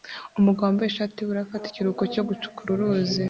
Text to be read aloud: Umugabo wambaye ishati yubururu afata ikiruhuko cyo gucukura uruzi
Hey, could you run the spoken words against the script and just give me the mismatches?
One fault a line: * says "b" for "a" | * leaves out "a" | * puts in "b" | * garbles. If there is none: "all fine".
all fine